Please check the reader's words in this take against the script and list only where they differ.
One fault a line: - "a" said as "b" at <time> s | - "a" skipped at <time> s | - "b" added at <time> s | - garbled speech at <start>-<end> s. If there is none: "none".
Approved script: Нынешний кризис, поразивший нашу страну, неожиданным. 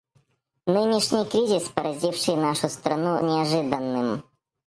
none